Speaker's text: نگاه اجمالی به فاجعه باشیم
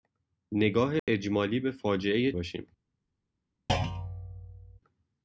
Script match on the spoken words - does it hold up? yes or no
yes